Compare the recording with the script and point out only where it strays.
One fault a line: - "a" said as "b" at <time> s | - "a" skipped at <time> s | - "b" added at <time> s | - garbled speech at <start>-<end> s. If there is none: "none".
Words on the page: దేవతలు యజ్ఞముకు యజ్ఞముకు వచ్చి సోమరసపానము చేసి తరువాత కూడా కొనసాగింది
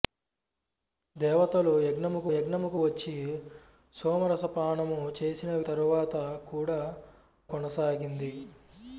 none